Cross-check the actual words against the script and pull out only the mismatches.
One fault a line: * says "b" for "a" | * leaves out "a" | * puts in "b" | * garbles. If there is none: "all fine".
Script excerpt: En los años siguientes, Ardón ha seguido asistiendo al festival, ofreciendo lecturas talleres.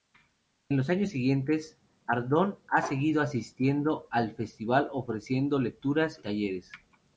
all fine